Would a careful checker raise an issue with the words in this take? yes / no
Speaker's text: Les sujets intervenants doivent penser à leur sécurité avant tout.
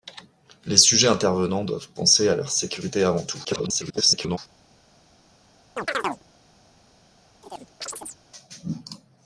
yes